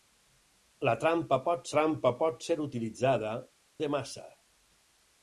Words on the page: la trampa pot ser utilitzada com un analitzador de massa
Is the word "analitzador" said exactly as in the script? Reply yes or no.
no